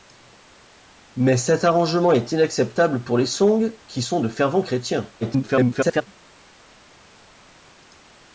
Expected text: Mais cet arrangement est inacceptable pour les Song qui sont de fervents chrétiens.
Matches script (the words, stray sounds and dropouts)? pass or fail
fail